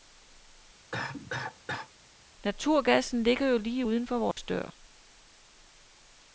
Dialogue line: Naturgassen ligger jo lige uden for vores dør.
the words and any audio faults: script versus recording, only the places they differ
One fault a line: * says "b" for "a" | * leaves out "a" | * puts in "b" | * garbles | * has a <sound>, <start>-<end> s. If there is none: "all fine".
* has a cough, 0.9-1.9 s
* has a dropout, 4.3-4.4 s